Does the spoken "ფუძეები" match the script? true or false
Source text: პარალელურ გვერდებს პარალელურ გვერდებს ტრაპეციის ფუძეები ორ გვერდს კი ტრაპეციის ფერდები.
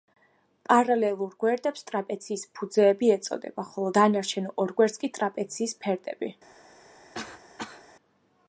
false